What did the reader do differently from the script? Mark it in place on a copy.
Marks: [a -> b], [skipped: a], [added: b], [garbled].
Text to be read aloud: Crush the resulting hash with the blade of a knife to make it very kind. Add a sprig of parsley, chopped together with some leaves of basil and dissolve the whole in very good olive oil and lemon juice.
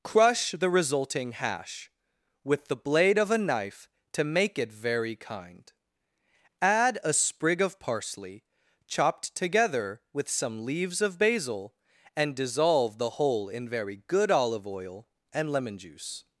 Crush the resulting hash with the blade of a knife to make it very kind. Add a sprig of parsley, chopped together with some leaves of basil and dissolve the whole in very good olive oil and lemon juice.